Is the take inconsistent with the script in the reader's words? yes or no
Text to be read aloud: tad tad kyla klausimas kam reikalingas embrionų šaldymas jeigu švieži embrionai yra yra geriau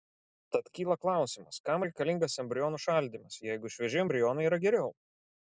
yes